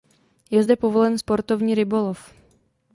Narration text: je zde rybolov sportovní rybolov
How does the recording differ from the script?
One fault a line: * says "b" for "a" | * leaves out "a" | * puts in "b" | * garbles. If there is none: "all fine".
* says "povolen" for "rybolov"